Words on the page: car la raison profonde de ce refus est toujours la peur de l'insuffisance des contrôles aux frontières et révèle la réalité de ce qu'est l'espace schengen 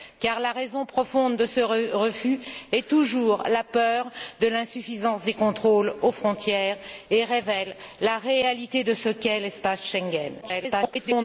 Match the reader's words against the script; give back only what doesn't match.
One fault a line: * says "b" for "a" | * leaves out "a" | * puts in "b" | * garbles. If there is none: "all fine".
* garbles